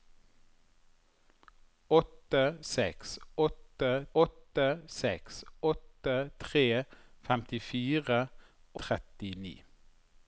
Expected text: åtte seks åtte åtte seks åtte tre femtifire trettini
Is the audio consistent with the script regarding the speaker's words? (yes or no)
yes